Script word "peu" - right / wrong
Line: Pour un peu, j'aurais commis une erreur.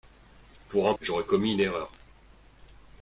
wrong